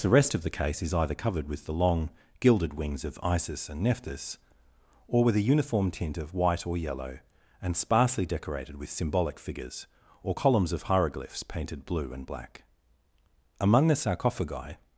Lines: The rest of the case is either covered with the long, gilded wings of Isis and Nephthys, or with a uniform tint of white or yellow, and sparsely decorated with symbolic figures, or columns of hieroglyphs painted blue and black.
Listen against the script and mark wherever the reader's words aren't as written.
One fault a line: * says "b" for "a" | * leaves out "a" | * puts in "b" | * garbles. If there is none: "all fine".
* puts in "Among the sarcophagi"